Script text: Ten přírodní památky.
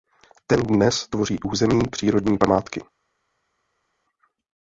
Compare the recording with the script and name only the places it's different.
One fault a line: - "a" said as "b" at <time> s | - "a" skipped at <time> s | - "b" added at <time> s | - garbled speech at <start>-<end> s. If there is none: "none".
- "dnes tvoří území" added at 0.6 s